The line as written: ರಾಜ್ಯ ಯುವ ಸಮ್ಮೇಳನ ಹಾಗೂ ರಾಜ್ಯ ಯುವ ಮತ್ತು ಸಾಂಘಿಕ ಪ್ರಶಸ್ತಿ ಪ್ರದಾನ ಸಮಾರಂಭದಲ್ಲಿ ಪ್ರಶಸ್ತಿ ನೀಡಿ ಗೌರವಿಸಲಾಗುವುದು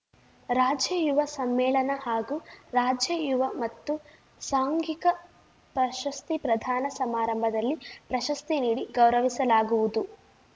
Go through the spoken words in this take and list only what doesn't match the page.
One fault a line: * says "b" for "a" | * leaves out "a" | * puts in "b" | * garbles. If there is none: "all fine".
all fine